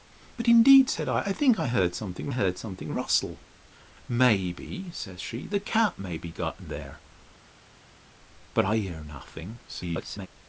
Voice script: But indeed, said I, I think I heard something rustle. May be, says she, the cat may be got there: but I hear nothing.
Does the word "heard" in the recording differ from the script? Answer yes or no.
no